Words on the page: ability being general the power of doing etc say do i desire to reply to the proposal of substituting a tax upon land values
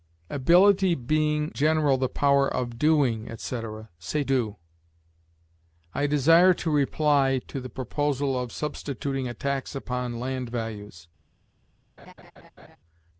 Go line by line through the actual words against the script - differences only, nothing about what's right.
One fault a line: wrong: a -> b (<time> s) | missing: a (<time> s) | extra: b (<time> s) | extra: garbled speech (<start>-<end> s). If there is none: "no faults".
no faults